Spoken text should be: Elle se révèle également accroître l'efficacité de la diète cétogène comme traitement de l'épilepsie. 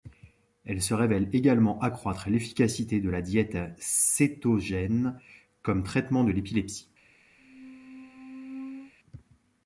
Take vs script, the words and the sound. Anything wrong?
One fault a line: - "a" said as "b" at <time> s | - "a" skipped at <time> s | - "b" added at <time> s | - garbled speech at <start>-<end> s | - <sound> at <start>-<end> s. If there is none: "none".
- squeak at 7.4-8.9 s